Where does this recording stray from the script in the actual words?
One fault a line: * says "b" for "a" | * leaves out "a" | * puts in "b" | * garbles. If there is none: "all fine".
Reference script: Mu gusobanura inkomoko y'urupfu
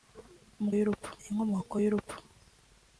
* says "y'urupfu" for "gusobanura"